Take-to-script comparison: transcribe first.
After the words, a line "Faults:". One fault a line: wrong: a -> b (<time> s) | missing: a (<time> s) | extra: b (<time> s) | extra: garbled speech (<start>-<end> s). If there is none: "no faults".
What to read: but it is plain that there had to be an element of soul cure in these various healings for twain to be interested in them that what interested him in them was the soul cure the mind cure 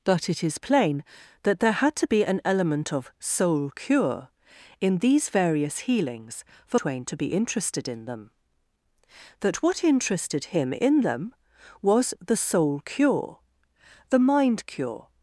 but it is plain that there had to be an element of soul cure in these various healings for twain to be interested in them that what interested him in them was the soul cure the mind cure
Faults:
no faults